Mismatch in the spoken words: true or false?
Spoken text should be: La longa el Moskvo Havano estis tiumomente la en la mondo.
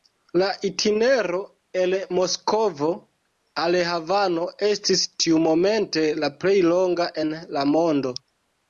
true